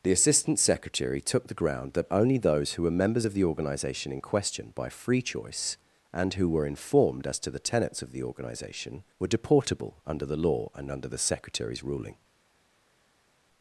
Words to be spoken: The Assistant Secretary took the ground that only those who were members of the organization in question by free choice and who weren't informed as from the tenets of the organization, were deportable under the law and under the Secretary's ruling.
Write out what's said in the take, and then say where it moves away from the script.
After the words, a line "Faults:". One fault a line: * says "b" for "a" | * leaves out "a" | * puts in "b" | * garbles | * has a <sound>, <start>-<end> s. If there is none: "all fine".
The Assistant Secretary took the ground that only those who were members of the organization in question by free choice and who were informed as to the tenets of the organization, were deportable under the law and under the Secretary's ruling.
Faults:
* says "were" for "weren't"
* says "to" for "from"